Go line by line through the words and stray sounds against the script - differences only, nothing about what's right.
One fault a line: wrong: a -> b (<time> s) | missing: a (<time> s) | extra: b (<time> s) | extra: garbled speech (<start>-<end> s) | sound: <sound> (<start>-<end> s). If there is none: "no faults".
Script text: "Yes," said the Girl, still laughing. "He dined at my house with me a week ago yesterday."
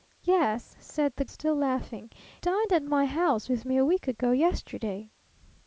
missing: Girl (1.2 s)
missing: He (2.1 s)